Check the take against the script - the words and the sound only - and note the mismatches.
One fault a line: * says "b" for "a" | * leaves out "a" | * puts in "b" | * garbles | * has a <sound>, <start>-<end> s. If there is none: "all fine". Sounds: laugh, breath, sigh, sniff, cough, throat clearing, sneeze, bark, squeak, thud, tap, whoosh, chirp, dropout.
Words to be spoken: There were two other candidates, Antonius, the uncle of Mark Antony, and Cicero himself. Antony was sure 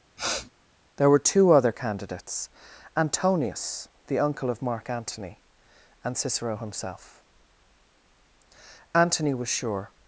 * has a sniff, 0.2-0.5 s